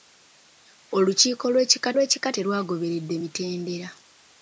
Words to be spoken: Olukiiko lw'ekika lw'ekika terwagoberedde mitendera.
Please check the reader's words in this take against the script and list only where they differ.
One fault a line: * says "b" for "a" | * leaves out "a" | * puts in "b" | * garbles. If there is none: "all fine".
all fine